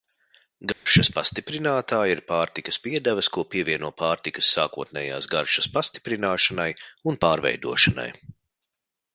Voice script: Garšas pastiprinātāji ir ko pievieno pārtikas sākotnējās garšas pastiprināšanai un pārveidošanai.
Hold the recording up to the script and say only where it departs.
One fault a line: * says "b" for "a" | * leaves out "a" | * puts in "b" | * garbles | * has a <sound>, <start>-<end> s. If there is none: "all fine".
* has a dropout, 0.7-0.9 s
* puts in "pārtikas piedevas"